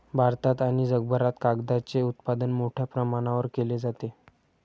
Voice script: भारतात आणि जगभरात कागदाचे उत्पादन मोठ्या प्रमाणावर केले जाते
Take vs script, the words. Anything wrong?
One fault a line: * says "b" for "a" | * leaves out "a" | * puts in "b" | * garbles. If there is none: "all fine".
all fine